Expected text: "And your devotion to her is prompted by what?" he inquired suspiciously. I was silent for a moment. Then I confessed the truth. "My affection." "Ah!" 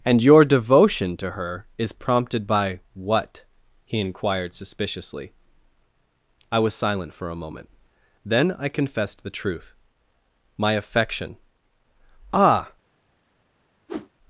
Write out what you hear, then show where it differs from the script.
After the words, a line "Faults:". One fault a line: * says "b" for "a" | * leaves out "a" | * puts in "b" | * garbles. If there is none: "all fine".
"And your devotion to her is prompted by what?" he inquired suspiciously. I was silent for a moment. Then I confessed the truth. "My affection." "Ah!"
Faults:
all fine